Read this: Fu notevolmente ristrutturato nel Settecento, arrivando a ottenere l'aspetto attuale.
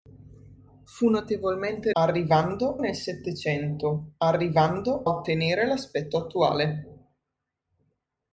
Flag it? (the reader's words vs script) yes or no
yes